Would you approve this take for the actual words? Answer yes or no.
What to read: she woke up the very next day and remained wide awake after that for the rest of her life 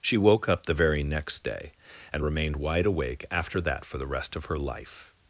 yes